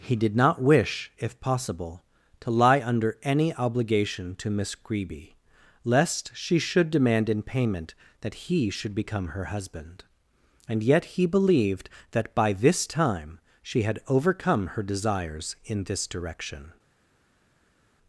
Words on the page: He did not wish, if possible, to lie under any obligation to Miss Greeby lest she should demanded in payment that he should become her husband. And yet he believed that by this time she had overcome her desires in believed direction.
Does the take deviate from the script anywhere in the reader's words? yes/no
yes